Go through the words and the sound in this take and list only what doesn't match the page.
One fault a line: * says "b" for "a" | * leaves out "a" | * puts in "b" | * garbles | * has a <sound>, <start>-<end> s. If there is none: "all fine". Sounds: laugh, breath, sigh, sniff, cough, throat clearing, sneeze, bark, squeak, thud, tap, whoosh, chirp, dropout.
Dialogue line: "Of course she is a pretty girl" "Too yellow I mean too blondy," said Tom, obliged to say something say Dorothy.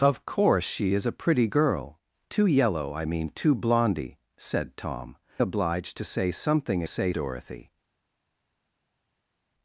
all fine